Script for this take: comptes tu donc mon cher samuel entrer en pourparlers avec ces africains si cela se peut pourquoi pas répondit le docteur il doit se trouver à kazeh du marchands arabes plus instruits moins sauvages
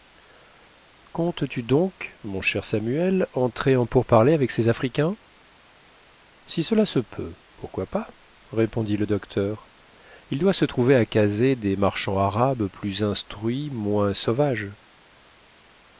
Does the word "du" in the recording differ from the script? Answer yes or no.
yes